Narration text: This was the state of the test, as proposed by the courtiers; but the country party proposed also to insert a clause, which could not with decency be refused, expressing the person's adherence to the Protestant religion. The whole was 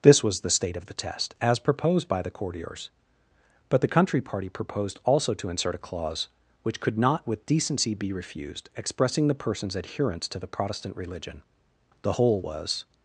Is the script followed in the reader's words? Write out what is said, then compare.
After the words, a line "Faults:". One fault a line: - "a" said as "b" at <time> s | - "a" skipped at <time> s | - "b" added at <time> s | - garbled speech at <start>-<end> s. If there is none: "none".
This was the state of the test, as proposed by the courtiers; but the country party proposed also to insert a clause, which could not with decency be refused, expressing the person's adherence to the Protestant religion. The whole was
Faults:
none